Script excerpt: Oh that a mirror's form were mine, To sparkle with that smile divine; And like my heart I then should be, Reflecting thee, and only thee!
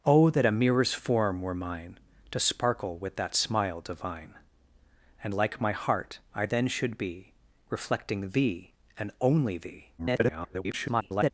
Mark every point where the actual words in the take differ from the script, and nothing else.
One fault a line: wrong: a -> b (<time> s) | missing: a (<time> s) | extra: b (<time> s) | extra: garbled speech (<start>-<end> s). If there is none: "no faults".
extra: garbled speech (10.0-11.3 s)